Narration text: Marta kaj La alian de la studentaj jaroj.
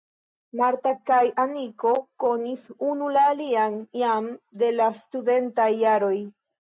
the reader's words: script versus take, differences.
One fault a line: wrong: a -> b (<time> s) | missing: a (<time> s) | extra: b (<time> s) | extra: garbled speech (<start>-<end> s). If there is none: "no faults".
extra: Aniko konis unu (1.4 s)
extra: jam (4.0 s)